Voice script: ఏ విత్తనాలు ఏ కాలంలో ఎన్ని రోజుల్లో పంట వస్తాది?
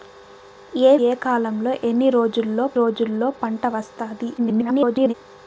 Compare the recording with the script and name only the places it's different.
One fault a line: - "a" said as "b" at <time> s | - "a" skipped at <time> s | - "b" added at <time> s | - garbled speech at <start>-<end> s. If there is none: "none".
- "విత్తనాలు" skipped at 1.0 s
- "రోజుల్లో" added at 2.7 s
- garbled speech at 4.4-5.1 s